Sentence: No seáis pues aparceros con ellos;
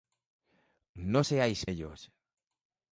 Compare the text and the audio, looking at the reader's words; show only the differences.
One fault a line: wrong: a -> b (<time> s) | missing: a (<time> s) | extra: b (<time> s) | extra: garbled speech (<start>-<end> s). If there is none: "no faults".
missing: pues aparceros con (1.6 s)